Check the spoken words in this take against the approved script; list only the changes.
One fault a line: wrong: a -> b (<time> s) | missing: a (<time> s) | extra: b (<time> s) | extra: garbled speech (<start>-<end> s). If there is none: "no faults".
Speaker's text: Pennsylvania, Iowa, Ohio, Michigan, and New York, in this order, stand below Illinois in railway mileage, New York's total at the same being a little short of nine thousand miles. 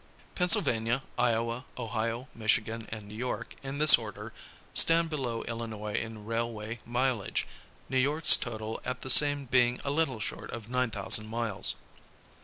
no faults